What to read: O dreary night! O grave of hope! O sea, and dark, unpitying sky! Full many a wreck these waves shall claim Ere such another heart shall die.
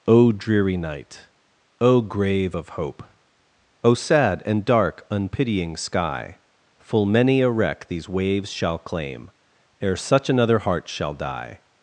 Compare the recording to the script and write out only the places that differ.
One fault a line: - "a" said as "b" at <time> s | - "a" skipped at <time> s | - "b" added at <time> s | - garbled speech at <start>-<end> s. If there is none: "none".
- "sea" said as "sad" at 3.9 s